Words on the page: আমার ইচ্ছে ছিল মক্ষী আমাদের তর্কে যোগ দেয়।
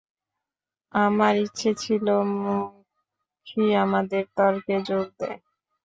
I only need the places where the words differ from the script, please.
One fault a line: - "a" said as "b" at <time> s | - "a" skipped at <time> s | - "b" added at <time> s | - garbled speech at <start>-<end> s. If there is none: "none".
none